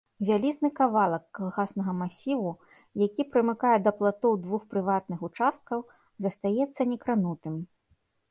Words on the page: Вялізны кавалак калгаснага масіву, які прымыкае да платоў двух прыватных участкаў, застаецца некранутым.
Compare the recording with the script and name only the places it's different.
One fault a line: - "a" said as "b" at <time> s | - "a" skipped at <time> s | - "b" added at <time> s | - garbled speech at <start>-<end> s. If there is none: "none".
none